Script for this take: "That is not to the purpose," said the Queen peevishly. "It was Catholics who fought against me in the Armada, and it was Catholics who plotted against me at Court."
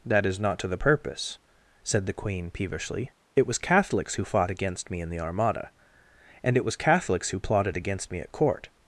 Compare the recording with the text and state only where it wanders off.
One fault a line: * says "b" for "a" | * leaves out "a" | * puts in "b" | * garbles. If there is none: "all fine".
all fine